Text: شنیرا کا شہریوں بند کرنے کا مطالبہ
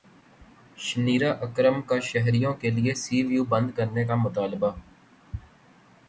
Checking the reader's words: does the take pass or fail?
fail